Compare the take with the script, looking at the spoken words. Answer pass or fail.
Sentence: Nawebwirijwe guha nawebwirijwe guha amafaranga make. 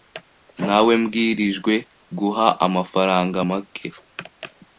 fail